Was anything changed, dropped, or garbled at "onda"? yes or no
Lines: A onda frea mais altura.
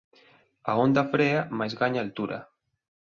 no